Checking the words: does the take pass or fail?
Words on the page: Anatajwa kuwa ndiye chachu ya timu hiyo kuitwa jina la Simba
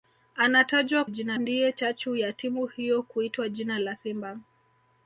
fail